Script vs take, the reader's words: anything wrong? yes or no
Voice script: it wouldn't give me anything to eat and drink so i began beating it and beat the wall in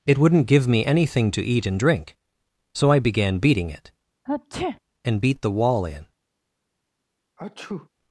no